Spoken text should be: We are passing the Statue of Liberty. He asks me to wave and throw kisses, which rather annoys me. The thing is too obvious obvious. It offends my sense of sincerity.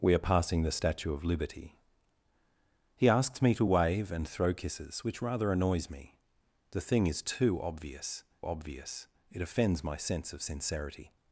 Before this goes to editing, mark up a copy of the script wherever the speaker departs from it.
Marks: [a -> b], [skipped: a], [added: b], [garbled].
We are passing the Statue of Liberty. He asks me to wave and throw kisses, which rather annoys me. The thing is too obvious obvious. It offends my sense of sincerity.